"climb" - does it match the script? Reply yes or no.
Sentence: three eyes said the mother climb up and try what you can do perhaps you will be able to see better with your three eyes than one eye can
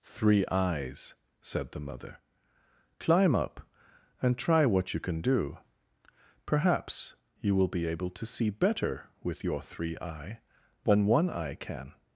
yes